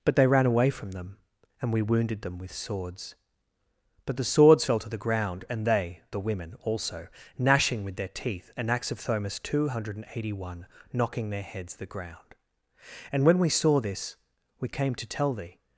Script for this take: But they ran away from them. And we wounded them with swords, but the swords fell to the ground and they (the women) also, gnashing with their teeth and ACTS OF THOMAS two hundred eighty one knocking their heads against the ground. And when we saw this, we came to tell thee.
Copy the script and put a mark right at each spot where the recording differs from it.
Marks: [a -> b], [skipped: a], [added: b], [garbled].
But they ran away from them. And we wounded them with swords, but the swords fell to the ground and they (the women) also, gnashing with their teeth and ACTS OF THOMAS two hundred eighty one knocking their heads [skipped: against] the ground. And when we saw this, we came to tell thee.